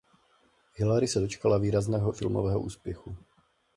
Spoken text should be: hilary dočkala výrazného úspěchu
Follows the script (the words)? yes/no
no